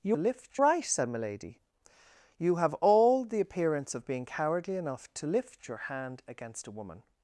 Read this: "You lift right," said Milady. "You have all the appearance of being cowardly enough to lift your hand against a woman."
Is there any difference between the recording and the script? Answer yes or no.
no